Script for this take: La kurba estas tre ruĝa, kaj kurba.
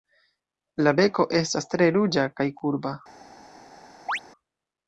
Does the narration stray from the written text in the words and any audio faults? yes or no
yes